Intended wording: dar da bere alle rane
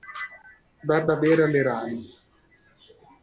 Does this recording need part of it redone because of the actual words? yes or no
no